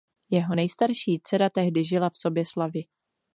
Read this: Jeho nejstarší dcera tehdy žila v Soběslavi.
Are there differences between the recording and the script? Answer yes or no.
no